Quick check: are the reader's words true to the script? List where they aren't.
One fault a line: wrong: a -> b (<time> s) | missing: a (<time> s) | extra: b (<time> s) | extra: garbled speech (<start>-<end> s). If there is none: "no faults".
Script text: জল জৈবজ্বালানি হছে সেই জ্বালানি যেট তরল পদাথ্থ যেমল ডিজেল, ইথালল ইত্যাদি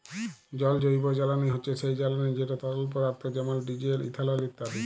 no faults